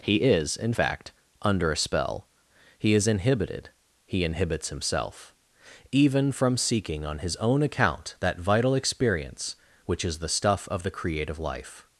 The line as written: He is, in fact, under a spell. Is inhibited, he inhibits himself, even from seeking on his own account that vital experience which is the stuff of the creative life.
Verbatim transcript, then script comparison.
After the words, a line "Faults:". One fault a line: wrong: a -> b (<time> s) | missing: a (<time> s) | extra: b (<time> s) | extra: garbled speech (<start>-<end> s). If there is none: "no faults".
He is, in fact, under a spell. He is inhibited, he inhibits himself, even from seeking on his own account that vital experience which is the stuff of the creative life.
Faults:
extra: He (2.8 s)